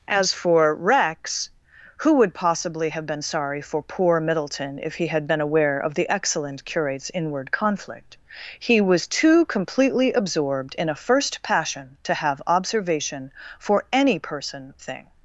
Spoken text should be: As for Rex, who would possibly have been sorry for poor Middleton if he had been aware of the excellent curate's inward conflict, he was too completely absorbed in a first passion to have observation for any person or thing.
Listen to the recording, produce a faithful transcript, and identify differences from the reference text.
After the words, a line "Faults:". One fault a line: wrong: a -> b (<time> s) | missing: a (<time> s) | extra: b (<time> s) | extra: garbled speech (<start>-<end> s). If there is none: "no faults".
As for Rex, who would possibly have been sorry for poor Middleton if he had been aware of the excellent curate's inward conflict, he was too completely absorbed in a first passion to have observation for any person thing.
Faults:
missing: or (14.7 s)